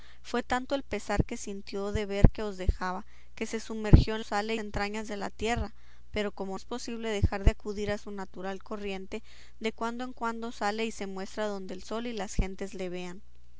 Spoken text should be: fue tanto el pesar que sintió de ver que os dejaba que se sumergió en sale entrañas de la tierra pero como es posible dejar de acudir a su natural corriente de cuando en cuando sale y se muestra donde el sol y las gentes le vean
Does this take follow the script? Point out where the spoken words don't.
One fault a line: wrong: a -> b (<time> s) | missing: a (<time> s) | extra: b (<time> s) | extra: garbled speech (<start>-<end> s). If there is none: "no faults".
no faults